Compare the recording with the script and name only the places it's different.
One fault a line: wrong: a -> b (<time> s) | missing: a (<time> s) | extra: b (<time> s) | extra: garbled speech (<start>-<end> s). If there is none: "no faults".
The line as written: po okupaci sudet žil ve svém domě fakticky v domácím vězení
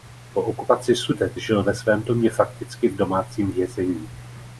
no faults